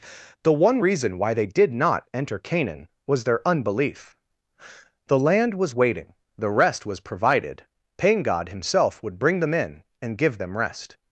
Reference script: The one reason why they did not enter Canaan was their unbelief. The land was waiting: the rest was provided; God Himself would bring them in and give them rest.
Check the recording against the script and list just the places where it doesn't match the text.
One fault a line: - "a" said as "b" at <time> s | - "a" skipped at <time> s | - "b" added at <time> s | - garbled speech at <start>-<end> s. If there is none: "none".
- "pain" added at 8.0 s